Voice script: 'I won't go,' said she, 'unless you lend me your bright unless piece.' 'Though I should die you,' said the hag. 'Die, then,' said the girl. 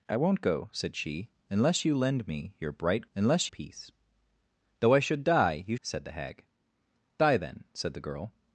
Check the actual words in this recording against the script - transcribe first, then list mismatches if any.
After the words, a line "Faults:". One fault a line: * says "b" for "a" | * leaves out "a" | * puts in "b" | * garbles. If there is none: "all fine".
'I won't go,' said she, 'unless you lend me your bright unless piece.' 'Though I should die you,' said the hag. 'Die, then,' said the girl.
Faults:
all fine